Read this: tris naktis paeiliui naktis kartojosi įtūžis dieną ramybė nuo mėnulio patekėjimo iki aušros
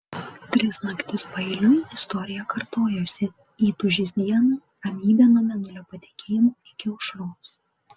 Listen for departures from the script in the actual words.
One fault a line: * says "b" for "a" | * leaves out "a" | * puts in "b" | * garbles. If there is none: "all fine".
* says "istorija" for "naktis"